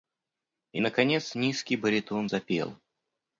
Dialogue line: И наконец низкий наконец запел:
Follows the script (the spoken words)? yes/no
no